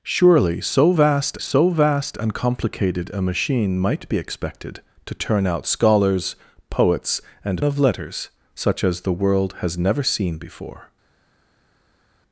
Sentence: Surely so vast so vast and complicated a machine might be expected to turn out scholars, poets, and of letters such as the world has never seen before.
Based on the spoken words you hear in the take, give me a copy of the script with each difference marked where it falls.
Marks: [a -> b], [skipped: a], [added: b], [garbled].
Surely so vast so vast and complicated a machine might be expected to turn out scholars, poets, and of letters such as the world has never seen before.